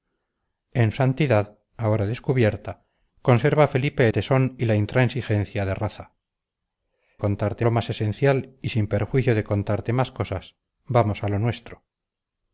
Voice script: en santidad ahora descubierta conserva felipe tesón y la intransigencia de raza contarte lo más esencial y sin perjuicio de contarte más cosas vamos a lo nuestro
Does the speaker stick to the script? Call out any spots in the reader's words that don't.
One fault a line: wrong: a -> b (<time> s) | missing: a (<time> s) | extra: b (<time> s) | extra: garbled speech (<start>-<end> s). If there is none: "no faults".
no faults